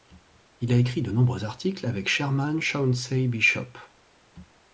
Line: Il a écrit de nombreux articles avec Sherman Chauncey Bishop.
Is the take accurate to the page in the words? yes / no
yes